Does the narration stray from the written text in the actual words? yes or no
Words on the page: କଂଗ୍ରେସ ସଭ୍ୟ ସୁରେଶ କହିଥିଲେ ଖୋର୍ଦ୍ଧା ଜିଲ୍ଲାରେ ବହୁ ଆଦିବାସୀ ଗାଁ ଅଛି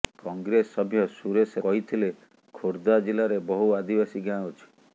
no